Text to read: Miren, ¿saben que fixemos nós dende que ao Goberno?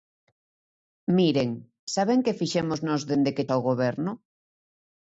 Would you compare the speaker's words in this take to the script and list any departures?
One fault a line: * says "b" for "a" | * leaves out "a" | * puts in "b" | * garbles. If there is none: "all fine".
all fine